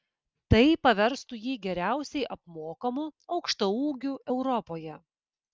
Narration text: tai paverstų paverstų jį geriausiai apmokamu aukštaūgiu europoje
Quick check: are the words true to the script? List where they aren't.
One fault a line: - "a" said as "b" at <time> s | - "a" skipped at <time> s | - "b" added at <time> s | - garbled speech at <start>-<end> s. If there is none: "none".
- "paverstų" skipped at 1.4 s